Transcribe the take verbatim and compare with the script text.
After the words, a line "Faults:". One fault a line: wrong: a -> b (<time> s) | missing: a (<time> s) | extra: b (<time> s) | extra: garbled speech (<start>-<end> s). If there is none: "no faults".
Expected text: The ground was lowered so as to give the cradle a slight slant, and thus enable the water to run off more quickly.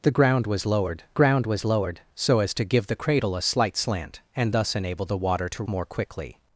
The ground was lowered ground was lowered so as to give the cradle a slight slant, and thus enable the water to more quickly.
Faults:
extra: ground was lowered (1.1 s)
missing: run off (5.6 s)